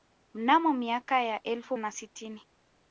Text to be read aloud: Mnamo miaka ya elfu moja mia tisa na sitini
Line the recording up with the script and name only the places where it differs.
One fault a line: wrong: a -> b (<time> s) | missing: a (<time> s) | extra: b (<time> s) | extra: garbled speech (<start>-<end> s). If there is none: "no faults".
missing: moja mia tisa (1.8 s)